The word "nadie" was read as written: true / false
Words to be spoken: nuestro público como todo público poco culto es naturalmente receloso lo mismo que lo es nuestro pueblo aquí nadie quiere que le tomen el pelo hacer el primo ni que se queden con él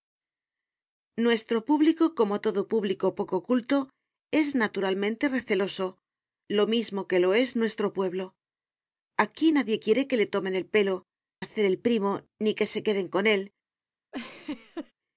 true